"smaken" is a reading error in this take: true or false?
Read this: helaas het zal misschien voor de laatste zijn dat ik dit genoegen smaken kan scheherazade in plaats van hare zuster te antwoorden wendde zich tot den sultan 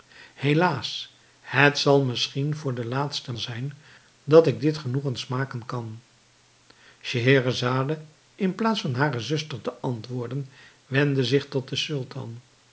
false